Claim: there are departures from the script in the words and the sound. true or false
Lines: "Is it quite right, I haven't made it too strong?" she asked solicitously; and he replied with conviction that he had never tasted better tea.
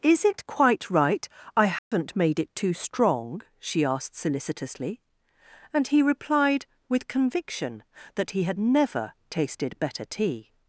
true